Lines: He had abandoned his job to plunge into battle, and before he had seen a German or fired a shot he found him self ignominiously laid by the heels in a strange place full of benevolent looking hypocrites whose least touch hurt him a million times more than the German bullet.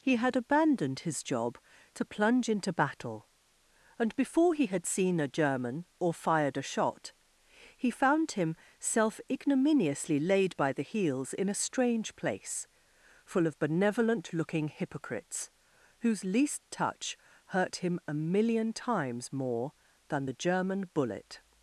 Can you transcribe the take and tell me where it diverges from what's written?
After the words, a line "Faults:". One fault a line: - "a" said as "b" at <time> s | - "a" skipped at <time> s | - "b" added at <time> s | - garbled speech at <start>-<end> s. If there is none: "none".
He had abandoned his job to plunge into battle, and before he had seen a German or fired a shot he found him self ignominiously laid by the heels in a strange place full of benevolent looking hypocrites whose least touch hurt him a million times more than the German bullet.
Faults:
none